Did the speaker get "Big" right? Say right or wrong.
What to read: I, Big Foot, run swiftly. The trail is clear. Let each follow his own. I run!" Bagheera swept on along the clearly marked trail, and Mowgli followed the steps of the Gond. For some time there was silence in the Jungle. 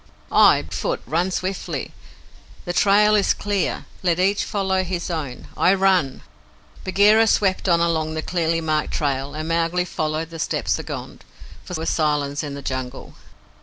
wrong